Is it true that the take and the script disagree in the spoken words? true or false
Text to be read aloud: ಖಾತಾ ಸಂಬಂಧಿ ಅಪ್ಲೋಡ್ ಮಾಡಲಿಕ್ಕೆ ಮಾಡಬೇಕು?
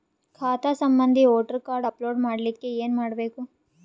true